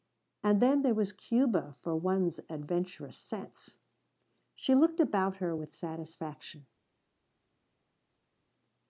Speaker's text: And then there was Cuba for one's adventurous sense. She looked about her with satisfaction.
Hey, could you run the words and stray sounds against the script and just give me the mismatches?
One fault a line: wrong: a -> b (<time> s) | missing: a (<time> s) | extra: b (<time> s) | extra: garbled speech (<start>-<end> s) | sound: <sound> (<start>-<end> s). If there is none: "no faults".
no faults